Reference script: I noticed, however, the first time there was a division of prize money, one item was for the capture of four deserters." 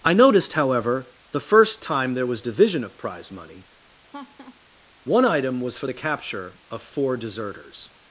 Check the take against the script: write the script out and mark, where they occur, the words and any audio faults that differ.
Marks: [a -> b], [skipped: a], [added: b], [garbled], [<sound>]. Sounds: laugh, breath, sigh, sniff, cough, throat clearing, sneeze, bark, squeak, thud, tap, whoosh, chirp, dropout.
I noticed, however, the first time there was [skipped: a] division of prize money, [laugh] one item was for the capture of four deserters."